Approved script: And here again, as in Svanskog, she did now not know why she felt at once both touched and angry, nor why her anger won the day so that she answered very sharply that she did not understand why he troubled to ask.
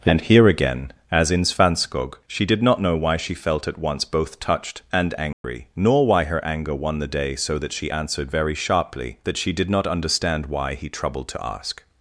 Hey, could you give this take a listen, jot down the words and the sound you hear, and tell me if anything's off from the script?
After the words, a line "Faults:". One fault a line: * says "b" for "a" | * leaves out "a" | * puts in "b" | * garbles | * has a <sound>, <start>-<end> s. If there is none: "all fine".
And here again, as in Svanskog, she did not know why she felt at once both touched and angry, nor why her anger won the day so that she answered very sharply that she did not understand why he troubled to ask.
Faults:
* leaves out "now"
* has a dropout, 5.3-5.4 s